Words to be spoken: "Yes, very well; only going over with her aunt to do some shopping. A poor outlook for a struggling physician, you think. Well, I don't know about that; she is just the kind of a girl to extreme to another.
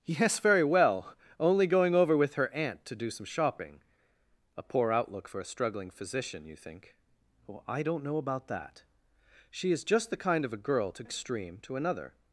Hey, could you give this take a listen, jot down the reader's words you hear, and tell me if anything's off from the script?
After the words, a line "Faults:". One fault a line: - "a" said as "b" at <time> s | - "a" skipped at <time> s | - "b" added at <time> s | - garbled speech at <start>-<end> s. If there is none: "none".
"Yes, very well; only going over with her aunt to do some shopping. A poor outlook for a struggling physician, you think. Well, I don't know about that; she is just the kind of a girl to extreme to another.
Faults:
none